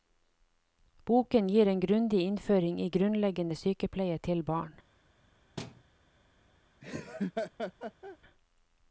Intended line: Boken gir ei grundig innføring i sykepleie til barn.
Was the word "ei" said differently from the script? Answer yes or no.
yes